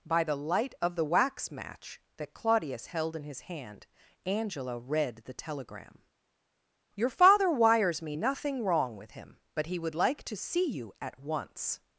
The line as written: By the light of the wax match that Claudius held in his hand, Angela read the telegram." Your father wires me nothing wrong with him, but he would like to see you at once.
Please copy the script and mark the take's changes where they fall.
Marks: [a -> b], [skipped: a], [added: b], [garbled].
By the light of the wax match that Claudius held in his hand, Angela read the telegram." Your father wires me nothing wrong with him, but he would like to see you at once.